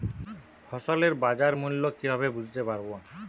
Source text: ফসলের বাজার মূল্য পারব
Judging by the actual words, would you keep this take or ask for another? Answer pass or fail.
fail